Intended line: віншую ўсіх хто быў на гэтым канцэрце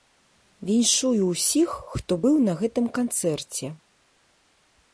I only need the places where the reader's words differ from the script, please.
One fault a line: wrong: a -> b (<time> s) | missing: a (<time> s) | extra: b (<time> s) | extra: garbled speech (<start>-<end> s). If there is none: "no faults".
no faults